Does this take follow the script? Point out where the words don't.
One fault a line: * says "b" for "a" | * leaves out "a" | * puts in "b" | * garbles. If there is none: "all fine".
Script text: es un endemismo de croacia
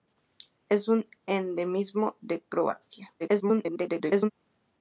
* garbles